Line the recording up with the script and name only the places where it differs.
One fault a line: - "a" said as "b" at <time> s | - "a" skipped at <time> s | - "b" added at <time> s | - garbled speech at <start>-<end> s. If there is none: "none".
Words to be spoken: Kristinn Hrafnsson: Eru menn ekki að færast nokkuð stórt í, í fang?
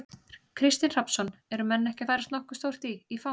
none